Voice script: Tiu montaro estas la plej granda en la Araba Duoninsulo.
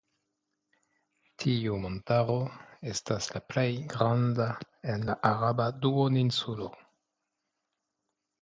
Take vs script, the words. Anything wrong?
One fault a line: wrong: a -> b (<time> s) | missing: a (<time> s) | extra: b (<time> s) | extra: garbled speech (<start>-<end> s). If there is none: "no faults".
no faults